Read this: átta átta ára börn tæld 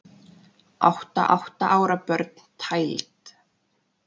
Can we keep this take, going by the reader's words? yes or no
yes